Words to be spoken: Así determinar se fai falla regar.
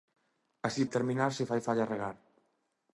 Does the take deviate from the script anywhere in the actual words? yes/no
no